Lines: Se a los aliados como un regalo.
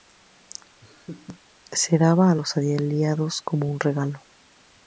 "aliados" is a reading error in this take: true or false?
false